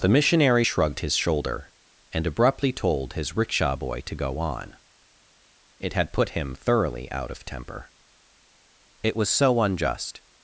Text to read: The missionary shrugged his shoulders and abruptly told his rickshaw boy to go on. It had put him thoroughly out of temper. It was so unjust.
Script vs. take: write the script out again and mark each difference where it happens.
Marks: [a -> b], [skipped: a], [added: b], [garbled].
The missionary shrugged his [shoulders -> shoulder] and abruptly told his rickshaw boy to go on. It had put him thoroughly out of temper. It was so unjust.